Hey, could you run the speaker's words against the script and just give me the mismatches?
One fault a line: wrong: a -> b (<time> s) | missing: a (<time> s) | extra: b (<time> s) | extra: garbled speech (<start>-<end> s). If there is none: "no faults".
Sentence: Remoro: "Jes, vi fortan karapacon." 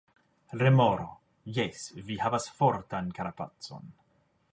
extra: havas (2.2 s)